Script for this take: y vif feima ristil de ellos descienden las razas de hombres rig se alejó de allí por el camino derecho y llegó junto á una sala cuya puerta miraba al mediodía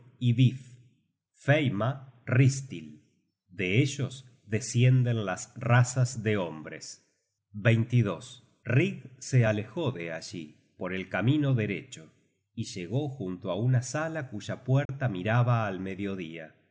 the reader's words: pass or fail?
pass